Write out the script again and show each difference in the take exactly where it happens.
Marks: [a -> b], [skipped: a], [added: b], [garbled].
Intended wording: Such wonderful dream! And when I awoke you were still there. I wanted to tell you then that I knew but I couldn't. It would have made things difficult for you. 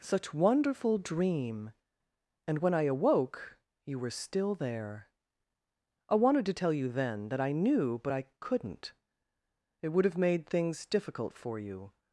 Such wonderful dream! And when I awoke you were still there. I wanted to tell you then that I knew but I couldn't. It would have made things difficult for you.